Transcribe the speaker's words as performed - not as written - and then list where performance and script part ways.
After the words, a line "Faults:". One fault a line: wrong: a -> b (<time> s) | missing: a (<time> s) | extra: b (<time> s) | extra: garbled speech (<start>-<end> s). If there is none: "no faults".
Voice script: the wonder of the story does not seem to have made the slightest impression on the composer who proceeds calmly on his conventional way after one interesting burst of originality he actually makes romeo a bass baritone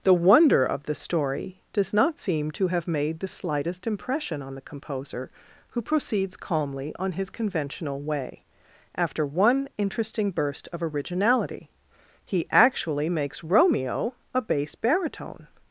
the wonder of the story does not seem to have made the slightest impression on the composer who proceeds calmly on his conventional way after one interesting burst of originality he actually makes romeo a bass baritone
Faults:
no faults